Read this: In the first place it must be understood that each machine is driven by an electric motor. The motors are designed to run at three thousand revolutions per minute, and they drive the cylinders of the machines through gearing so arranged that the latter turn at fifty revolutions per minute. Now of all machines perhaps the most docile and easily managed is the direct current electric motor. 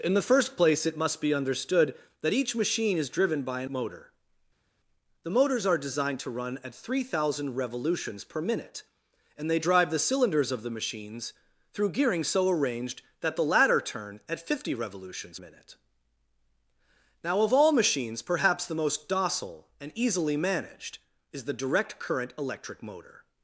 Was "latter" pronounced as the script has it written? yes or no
yes